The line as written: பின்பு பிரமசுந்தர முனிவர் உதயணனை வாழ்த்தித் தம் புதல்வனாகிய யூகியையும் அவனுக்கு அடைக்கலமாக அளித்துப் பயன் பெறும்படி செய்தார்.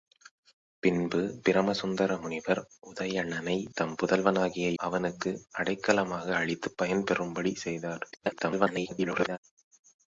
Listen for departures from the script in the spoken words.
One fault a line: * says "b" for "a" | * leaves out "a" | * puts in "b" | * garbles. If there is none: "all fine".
* leaves out "வாழ்த்தித்"
* leaves out "யூகியையும்"
* garbles